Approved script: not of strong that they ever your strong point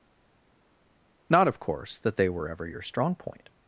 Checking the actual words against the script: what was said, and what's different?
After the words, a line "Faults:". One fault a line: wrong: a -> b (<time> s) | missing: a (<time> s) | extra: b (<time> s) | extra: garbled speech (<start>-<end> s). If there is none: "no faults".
not of course that they were ever your strong point
Faults:
wrong: strong -> course (1.6 s)
extra: were (2.3 s)